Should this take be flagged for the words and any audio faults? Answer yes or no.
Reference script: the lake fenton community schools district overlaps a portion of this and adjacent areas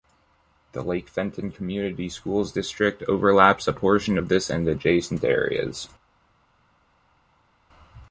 no